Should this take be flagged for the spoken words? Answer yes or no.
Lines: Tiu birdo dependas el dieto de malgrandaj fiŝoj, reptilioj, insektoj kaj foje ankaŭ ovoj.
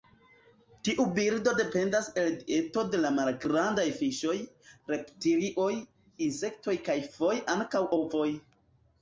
no